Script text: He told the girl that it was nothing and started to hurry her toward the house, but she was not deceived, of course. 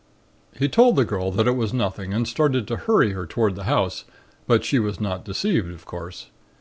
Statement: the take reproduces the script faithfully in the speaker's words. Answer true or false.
true